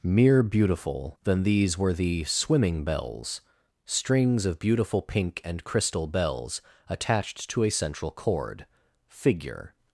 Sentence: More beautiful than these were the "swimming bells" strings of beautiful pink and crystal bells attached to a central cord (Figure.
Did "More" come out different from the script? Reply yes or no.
yes